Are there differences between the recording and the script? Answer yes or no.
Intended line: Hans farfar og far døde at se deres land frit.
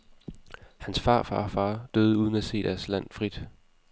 yes